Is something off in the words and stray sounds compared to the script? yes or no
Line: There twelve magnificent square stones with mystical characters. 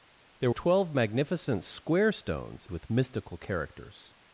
no